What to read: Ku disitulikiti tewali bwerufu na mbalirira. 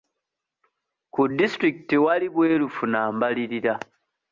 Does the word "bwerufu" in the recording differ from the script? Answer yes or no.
no